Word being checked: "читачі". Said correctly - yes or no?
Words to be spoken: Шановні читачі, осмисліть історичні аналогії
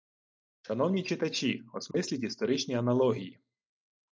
yes